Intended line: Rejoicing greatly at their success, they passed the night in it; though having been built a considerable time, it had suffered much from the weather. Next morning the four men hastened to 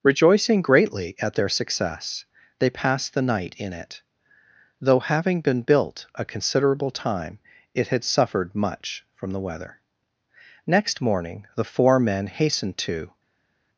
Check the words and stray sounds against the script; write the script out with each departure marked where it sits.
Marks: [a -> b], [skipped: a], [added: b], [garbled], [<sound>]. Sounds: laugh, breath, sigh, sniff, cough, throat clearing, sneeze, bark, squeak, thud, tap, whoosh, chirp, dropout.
Rejoicing greatly at their success, they passed the night in it; though having been built a considerable time, it had suffered much from the weather. Next morning the four men hastened to